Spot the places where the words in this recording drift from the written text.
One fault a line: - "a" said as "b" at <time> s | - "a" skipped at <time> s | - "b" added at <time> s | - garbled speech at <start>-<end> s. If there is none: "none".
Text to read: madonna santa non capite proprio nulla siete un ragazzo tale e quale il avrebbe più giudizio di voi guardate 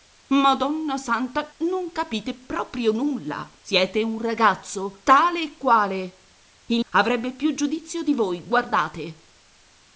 none